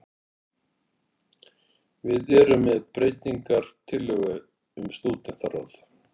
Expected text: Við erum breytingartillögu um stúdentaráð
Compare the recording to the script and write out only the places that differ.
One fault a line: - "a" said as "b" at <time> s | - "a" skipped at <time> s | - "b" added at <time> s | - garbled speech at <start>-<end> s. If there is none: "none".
- "með" added at 2.7 s